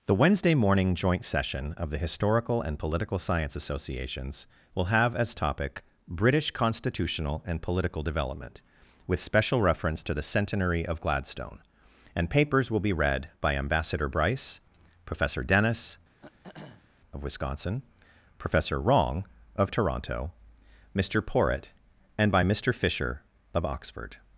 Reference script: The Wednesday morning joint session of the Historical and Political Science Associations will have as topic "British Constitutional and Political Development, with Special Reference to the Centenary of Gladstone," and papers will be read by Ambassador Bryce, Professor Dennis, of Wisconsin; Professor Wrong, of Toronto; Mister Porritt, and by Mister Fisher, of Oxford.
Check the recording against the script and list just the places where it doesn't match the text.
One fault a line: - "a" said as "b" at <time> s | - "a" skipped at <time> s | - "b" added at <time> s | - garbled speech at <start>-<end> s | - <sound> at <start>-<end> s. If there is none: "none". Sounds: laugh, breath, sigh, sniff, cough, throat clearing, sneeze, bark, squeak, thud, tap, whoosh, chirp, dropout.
- throat clearing at 16.2-16.9 s